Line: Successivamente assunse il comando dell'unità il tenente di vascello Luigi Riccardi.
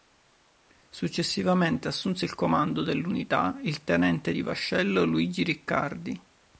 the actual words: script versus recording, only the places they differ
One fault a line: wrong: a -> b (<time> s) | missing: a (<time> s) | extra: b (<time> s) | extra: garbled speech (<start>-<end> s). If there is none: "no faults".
no faults